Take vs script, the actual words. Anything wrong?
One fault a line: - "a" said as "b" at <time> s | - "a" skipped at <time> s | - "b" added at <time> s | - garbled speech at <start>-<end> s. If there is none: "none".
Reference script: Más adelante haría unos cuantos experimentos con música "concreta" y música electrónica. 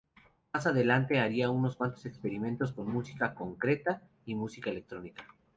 none